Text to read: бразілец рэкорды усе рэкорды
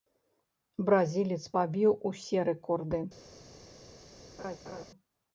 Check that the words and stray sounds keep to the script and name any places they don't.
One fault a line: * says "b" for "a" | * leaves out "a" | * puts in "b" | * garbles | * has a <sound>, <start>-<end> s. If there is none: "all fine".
* says "пабіў" for "рэкорды"
* has a laugh, 4.4-4.9 s